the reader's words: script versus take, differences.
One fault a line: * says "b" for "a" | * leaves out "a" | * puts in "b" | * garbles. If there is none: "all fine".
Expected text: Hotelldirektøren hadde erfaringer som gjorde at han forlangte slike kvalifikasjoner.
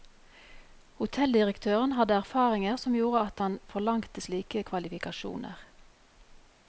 all fine